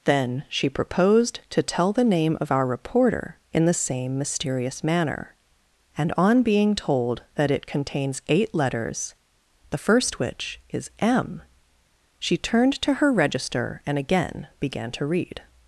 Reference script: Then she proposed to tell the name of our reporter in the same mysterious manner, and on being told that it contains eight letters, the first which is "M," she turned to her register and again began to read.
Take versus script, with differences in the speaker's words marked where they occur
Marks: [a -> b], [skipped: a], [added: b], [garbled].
Then she proposed to tell the name of our reporter in the same mysterious manner, and on being told that it contains eight letters, the first which is "M," she turned to her register and again began to read.